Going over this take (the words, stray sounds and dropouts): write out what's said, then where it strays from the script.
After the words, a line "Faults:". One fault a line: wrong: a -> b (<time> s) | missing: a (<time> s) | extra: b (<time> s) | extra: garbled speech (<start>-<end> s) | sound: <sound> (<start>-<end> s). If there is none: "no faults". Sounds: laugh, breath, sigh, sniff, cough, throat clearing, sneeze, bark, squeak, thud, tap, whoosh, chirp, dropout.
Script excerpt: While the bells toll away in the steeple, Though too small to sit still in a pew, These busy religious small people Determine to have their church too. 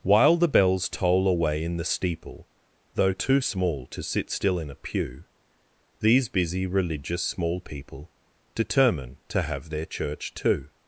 While the bells toll away in the steeple, Though too small to sit still in a pew, These busy religious small people Determine to have their church too.
Faults:
no faults